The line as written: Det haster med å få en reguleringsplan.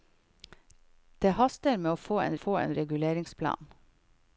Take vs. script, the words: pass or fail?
fail